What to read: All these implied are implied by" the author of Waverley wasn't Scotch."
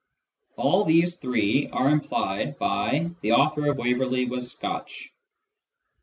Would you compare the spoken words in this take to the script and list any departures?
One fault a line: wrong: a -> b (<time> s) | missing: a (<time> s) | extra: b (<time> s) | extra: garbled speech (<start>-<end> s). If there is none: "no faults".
wrong: implied -> three (1.2 s)
wrong: wasn't -> was (4.3 s)